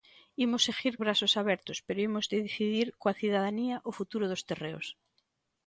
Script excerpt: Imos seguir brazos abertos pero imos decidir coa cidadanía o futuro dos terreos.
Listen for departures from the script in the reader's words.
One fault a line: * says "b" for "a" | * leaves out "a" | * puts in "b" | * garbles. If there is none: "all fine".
all fine